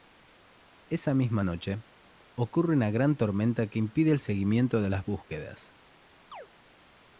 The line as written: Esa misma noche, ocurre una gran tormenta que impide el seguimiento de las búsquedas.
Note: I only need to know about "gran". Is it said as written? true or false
true